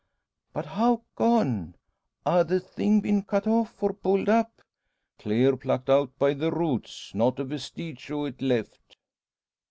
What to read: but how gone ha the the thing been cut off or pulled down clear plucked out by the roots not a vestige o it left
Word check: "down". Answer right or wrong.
wrong